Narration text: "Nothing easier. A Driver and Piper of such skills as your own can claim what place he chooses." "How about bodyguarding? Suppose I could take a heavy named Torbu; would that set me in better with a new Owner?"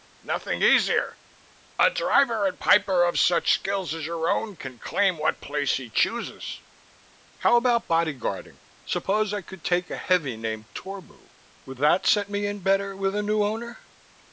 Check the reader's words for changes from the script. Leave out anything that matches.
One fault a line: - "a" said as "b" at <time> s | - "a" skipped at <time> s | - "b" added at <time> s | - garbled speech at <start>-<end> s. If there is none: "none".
none